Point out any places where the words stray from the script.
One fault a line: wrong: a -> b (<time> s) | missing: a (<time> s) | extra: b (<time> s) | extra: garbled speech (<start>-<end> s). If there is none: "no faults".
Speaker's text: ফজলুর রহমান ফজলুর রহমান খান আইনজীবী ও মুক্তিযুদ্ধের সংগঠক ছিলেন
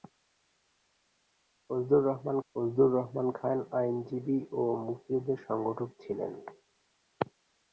no faults